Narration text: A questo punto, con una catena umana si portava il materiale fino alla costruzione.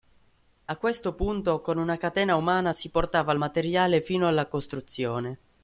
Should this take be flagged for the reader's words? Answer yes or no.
no